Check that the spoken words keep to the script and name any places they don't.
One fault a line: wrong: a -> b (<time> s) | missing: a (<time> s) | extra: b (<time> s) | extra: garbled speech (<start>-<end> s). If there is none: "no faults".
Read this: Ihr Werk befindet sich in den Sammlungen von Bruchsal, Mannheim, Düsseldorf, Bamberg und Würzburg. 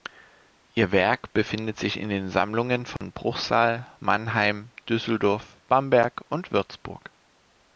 no faults